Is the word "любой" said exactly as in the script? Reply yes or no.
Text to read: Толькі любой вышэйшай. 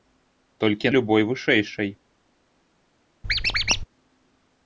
yes